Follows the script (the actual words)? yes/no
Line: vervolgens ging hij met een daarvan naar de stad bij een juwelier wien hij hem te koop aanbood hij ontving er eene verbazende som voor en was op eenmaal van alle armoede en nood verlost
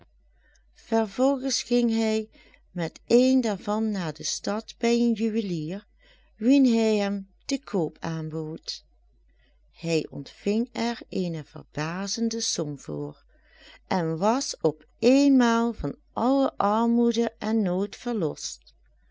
yes